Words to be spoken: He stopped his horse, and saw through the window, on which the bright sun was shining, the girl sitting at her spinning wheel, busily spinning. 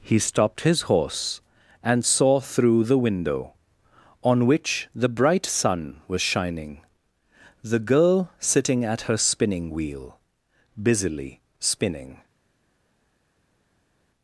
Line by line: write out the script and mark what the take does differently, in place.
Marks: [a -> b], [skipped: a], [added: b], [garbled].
He stopped his horse, and saw through the window, on which the bright sun was shining, the girl sitting at her spinning wheel, busily spinning.